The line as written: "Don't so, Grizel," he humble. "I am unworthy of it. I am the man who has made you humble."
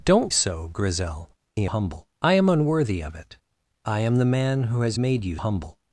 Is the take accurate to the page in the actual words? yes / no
yes